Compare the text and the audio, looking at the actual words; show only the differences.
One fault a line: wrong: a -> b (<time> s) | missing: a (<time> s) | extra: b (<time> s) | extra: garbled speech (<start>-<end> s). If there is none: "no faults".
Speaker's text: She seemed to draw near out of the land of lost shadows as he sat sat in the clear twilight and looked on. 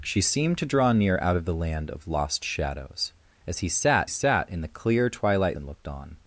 no faults